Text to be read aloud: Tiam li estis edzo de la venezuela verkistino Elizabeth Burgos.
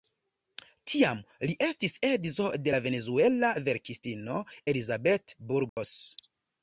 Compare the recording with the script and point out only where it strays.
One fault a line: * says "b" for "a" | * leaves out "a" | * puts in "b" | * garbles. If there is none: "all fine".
all fine